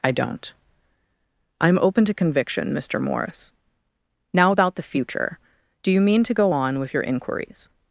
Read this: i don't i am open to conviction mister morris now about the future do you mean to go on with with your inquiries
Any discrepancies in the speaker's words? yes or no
yes